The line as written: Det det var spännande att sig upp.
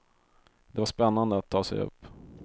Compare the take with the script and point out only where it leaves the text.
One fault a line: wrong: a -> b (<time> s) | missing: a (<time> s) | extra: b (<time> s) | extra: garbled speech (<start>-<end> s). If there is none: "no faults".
missing: det (0.8 s)
extra: ta (1.5 s)